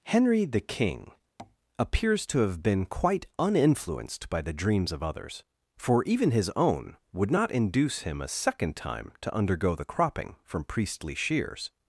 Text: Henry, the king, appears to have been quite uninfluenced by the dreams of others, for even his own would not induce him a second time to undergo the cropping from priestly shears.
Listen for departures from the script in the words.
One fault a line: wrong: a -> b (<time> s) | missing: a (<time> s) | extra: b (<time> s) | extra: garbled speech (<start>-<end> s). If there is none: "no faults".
no faults